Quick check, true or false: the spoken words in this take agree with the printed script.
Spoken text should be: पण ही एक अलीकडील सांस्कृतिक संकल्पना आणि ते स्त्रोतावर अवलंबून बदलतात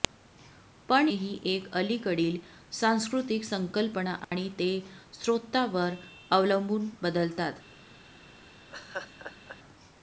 true